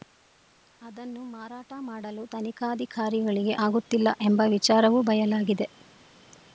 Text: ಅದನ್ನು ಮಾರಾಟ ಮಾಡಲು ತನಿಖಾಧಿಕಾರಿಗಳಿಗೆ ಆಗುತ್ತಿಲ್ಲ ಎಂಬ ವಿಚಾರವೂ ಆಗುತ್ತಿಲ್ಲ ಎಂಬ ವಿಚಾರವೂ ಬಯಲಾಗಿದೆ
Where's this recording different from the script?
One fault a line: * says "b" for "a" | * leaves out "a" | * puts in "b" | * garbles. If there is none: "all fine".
* leaves out "ಆಗುತ್ತಿಲ್ಲ ಎಂಬ ವಿಚಾರವೂ"